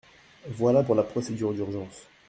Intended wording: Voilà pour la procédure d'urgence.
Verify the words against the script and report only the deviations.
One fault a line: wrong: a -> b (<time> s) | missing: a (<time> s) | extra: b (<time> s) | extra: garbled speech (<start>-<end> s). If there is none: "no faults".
no faults